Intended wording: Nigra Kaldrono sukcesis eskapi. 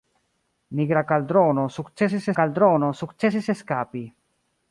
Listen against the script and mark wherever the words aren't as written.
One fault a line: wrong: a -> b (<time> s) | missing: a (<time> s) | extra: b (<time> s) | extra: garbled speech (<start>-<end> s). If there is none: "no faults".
extra: Kaldrono sukcesis (2.4 s)